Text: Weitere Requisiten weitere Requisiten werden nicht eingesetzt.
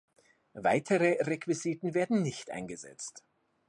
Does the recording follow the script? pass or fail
fail